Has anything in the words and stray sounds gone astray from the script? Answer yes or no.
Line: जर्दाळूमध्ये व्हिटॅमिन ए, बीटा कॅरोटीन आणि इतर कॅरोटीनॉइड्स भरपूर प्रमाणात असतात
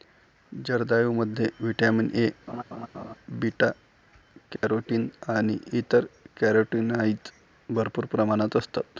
yes